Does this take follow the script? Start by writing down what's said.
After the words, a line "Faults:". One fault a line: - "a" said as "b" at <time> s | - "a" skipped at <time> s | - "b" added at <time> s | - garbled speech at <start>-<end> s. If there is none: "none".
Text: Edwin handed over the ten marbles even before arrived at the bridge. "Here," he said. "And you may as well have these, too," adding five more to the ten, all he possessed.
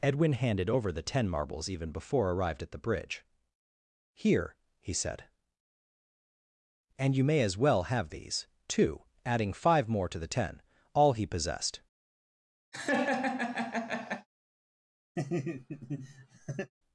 Edwin handed over the ten marbles even before arrived at the bridge. "Here," he said. "And you may as well have these, too," adding five more to the ten, all he possessed.
Faults:
none